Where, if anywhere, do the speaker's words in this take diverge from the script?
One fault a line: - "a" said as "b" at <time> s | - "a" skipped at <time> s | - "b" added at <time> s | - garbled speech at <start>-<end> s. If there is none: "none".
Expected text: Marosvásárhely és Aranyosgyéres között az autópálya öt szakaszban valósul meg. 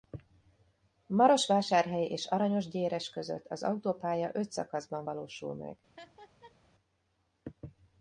none